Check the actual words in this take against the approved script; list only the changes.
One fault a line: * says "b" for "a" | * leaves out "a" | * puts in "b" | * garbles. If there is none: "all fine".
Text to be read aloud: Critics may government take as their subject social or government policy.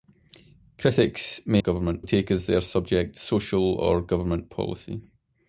all fine